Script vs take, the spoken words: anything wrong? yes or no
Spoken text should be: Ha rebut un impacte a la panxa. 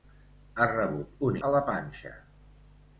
yes